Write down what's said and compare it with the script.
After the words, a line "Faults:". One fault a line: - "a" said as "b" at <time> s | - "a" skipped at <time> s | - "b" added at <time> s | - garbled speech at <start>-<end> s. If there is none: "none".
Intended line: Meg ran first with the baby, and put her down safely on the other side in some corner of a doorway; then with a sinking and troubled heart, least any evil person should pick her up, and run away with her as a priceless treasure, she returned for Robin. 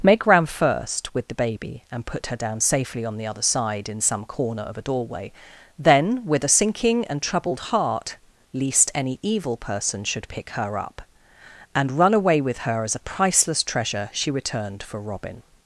Meg ran first with the baby, and put her down safely on the other side in some corner of a doorway; then with a sinking and troubled heart, least any evil person should pick her up, and run away with her as a priceless treasure, she returned for Robin.
Faults:
none